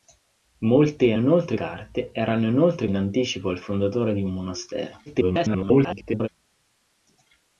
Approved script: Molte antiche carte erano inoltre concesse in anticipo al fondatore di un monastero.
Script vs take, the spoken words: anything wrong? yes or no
yes